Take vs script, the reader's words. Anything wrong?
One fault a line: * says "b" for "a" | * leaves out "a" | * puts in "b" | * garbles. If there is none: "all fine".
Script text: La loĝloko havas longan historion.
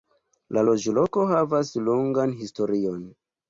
all fine